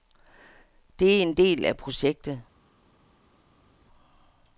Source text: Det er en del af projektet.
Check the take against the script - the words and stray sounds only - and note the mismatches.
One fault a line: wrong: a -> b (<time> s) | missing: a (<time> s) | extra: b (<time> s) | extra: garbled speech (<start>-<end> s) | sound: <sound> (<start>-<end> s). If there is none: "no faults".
no faults